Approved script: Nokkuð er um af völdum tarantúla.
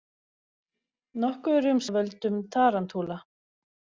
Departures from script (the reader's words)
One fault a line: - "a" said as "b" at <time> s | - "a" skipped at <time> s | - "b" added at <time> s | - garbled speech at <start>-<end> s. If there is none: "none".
none